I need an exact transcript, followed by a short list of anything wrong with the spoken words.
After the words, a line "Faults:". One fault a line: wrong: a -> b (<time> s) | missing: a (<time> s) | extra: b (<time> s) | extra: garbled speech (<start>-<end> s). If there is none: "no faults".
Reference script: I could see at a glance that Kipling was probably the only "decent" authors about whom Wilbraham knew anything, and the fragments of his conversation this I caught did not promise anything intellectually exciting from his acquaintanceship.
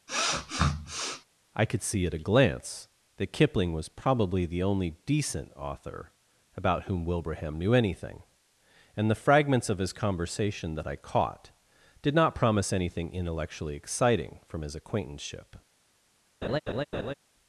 I could see at a glance that Kipling was probably the only "decent" author about whom Wilbraham knew anything, and the fragments of his conversation that I caught did not promise anything intellectually exciting from his acquaintanceship.
Faults:
wrong: authors -> author (5.6 s)
wrong: this -> that (10.7 s)